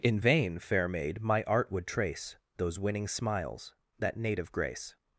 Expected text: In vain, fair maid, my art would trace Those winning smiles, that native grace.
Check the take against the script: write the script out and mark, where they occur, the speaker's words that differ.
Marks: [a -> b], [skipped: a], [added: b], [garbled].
In vain, fair maid, my art would trace Those winning smiles, that native grace.